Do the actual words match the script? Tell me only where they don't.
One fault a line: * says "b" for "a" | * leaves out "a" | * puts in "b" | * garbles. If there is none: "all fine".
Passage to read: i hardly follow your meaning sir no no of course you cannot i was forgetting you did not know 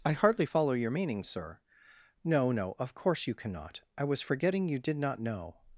all fine